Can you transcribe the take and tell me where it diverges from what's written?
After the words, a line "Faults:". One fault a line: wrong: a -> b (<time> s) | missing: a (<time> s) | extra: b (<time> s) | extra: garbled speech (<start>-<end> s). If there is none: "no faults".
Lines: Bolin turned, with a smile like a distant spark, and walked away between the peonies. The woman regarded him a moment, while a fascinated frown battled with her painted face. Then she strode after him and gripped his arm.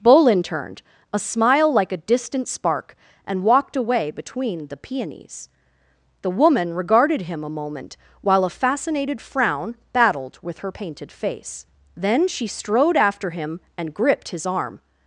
Bolin turned, a smile like a distant spark, and walked away between the peonies. The woman regarded him a moment, while a fascinated frown battled with her painted face. Then she strode after him and gripped his arm.
Faults:
missing: with (0.8 s)